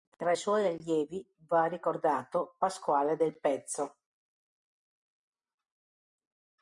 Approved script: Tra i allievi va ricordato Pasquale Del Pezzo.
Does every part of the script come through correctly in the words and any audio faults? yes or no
no